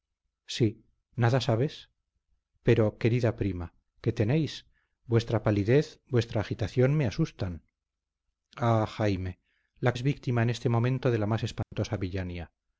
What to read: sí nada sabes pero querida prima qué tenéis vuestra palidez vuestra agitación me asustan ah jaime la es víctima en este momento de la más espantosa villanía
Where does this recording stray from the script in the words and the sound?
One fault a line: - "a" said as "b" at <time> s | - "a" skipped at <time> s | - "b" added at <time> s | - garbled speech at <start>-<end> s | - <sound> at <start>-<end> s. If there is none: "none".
- dropout at 11.6-11.7 s